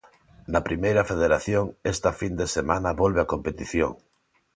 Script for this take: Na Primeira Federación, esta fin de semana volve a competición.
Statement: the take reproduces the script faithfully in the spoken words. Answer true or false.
true